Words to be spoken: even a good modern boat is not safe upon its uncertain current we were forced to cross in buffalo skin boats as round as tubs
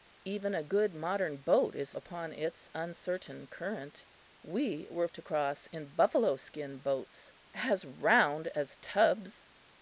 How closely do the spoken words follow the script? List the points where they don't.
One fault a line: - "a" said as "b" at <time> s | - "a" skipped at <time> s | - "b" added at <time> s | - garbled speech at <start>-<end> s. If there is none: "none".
- "not safe" skipped at 1.9 s
- "forced" skipped at 5.1 s